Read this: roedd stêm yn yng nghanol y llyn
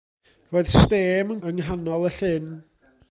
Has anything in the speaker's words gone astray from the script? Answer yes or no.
no